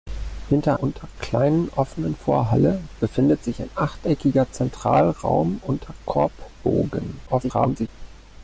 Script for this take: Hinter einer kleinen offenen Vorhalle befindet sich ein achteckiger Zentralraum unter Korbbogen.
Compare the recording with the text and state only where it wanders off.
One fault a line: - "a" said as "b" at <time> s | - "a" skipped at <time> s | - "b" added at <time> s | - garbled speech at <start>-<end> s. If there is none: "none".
- "einer" said as "unter" at 0.8 s
- garbled speech at 7.3-7.9 s